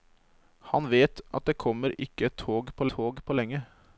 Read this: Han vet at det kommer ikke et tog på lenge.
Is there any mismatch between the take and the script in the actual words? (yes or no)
yes